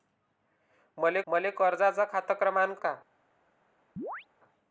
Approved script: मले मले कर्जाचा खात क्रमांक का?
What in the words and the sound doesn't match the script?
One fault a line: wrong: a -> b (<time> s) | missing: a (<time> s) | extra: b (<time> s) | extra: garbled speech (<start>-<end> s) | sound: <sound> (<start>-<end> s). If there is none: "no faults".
sound: chirp (4.0-4.3 s)